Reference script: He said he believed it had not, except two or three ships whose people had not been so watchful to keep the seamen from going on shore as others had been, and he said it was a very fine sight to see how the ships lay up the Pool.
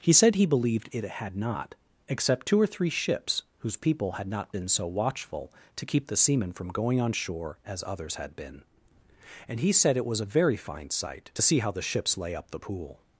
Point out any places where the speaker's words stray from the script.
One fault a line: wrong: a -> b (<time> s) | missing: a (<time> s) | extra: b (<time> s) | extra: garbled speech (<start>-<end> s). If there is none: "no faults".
no faults